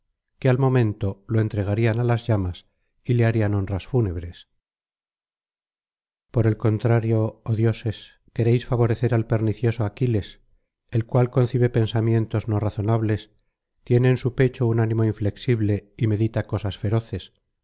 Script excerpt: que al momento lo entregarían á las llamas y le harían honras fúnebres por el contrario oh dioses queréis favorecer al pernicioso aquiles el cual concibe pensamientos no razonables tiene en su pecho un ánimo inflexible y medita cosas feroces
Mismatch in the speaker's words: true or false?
false